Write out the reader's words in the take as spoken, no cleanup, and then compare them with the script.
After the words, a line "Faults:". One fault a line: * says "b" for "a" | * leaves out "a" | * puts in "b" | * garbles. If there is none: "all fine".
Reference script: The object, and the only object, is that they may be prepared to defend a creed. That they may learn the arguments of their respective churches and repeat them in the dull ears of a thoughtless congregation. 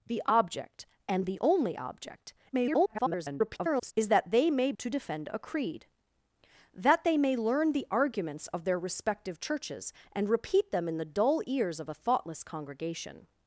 The object, and the only object, [garbled] is that they may to defend a creed. That they may learn the arguments of their respective churches and repeat them in the dull ears of a thoughtless congregation.
Faults:
* garbles
* leaves out "be prepared"